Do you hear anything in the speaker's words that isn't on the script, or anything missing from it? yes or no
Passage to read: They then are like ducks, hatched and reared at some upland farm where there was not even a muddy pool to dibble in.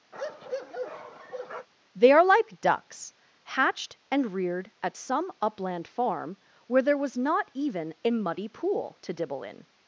yes